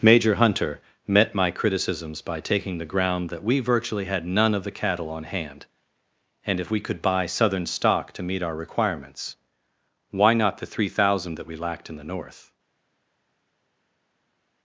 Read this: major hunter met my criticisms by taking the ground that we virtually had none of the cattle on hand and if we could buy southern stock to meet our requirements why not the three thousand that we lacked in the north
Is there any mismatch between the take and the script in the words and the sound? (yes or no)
no